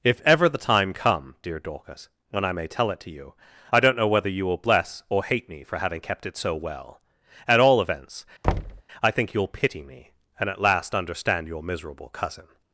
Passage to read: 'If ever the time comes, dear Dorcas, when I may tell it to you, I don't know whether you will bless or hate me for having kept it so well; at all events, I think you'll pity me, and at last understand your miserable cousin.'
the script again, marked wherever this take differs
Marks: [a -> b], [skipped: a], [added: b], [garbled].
'If ever the time [comes, -> come] dear Dorcas, when I may tell it to you, I don't know whether you will bless or hate me for having kept it so well; at all events, I think you'll pity me, and at last understand your miserable cousin.'